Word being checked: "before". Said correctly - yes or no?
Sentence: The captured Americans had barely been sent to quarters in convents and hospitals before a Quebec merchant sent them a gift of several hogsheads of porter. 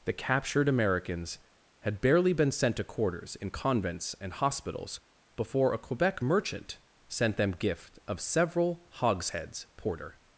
yes